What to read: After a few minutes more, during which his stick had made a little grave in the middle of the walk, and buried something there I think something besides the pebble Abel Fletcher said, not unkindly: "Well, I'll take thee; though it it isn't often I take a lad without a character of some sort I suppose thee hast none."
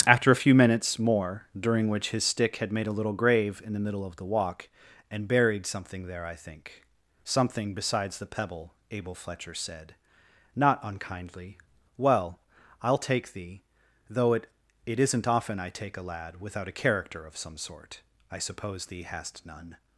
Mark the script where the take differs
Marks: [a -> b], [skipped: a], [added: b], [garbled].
After a few minutes more, during which his stick had made a little grave in the middle of the walk, and buried something there I think something besides the pebble Abel Fletcher said, not unkindly: "Well, I'll take thee; though it it isn't often I take a lad without a character of some sort I suppose thee hast none."